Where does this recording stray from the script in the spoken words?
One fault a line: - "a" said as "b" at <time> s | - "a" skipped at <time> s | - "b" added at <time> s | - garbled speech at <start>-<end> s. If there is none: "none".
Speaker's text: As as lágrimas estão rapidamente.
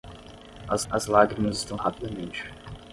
none